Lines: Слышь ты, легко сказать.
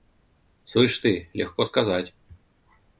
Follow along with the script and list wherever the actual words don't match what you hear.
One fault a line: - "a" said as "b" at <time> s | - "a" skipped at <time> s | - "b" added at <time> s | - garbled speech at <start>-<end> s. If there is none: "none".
none